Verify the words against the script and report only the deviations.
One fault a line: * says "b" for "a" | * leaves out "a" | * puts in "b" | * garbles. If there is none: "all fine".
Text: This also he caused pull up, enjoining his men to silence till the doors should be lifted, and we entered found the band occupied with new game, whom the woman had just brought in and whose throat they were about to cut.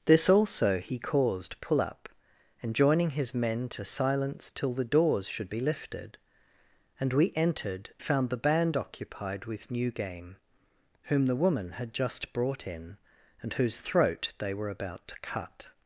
all fine